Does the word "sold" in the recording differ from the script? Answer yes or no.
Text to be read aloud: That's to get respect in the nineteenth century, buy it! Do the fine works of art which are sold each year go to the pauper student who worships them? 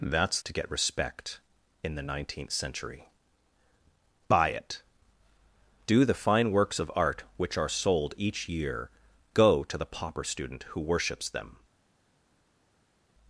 no